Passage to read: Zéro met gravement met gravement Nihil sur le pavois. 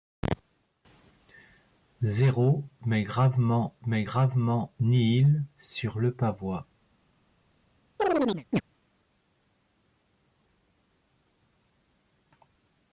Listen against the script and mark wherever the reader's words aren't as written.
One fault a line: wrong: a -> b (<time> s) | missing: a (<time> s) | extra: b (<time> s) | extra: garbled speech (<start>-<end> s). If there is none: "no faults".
no faults